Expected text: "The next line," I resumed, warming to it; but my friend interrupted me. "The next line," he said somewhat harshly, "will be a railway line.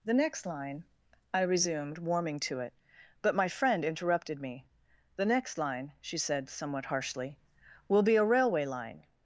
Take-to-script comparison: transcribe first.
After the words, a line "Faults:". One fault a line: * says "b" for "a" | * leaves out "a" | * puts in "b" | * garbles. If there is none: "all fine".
"The next line," I resumed, warming to it; but my friend interrupted me. "The next line," she said somewhat harshly, "will be a railway line.
Faults:
* says "she" for "he"